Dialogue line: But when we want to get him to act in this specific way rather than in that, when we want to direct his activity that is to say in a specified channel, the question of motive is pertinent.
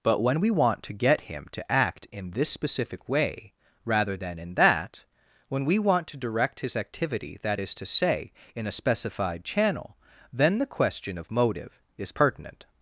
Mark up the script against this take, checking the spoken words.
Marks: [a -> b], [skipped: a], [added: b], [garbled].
But when we want to get him to act in this specific way rather than in that, when we want to direct his activity that is to say in a specified channel, [added: then] the question of motive is pertinent.